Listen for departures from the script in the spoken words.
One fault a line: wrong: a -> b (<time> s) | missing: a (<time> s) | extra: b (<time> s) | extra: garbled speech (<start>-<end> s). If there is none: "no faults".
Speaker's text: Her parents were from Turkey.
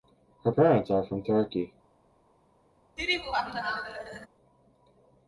wrong: were -> are (0.9 s)